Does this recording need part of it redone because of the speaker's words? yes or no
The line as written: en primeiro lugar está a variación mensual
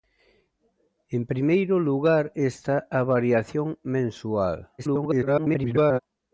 yes